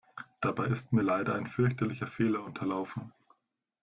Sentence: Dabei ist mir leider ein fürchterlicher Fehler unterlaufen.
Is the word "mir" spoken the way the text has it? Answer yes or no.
yes